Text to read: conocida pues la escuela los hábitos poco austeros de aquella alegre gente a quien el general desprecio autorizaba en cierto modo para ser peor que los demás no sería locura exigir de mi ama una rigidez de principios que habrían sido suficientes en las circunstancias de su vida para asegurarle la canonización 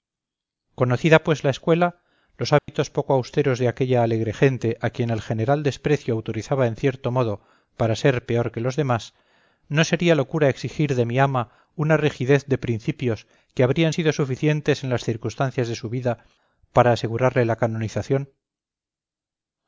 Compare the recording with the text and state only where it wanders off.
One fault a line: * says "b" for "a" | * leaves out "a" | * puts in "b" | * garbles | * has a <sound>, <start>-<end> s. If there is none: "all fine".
* has a dropout, 2.6-2.7 s